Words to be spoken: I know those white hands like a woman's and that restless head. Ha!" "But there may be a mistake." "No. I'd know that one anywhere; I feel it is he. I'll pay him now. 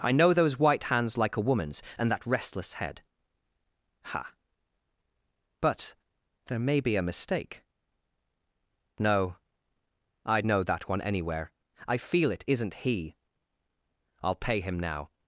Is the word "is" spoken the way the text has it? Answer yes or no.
no